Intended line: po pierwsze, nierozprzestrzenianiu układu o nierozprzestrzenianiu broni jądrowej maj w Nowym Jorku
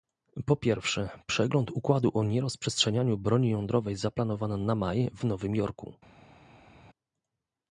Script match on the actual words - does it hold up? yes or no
no